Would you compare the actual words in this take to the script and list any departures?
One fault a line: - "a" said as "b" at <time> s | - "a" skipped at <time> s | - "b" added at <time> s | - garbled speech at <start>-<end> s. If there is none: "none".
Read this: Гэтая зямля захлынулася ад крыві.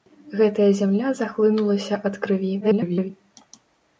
- garbled speech at 2.6-3.1 s